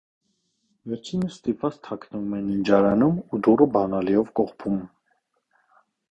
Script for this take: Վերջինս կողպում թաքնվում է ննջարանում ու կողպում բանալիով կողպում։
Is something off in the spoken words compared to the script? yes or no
yes